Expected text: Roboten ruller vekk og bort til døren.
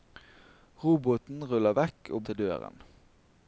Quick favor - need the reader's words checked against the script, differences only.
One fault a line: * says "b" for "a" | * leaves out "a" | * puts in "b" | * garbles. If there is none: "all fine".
* leaves out "bort"